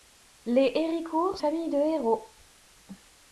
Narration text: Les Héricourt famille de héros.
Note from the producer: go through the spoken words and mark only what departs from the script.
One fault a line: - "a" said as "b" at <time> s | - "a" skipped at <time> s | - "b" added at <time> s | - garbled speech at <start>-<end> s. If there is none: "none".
none